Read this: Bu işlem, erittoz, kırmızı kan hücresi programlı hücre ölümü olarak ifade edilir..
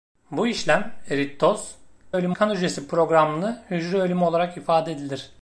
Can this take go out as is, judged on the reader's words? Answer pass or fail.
fail